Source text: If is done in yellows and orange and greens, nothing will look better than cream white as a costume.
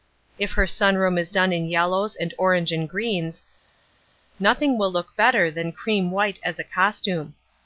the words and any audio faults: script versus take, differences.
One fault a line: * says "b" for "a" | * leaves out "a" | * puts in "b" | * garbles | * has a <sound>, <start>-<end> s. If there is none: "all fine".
* puts in "her sun room"